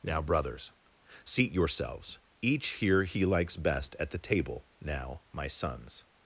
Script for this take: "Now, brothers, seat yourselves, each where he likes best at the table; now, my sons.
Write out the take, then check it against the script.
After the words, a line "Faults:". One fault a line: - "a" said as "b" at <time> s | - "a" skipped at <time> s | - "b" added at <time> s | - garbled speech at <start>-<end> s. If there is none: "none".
"Now, brothers, seat yourselves, each here he likes best at the table; now, my sons.
Faults:
- "where" said as "here" at 2.7 s